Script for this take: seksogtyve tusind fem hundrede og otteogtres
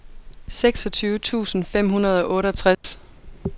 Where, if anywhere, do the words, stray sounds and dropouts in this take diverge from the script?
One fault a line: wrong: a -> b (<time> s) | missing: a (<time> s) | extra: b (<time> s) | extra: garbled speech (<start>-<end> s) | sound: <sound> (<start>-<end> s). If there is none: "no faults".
sound: dropout (2.7-2.8 s)